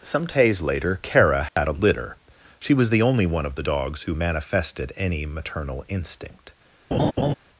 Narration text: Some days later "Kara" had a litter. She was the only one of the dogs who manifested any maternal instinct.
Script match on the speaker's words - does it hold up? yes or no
yes